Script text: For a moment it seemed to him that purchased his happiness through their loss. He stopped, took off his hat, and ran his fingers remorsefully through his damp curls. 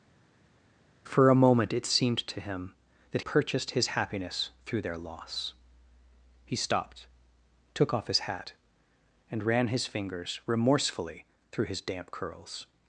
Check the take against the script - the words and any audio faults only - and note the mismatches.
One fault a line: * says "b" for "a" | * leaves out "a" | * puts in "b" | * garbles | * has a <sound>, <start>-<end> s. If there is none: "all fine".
all fine